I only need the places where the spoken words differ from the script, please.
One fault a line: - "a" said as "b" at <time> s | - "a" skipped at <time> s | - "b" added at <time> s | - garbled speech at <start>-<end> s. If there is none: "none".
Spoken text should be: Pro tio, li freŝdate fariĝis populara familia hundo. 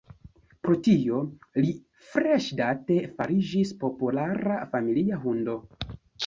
none